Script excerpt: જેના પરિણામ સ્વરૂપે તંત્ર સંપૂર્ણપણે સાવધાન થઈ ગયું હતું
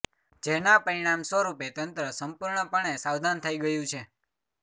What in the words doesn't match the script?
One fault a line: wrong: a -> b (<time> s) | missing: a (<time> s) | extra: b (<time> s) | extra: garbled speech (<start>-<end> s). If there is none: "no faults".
wrong: હતું -> છે (3.9 s)